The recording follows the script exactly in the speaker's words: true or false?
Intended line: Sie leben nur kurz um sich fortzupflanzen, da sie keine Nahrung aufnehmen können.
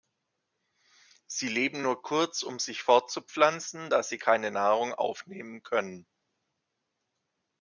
true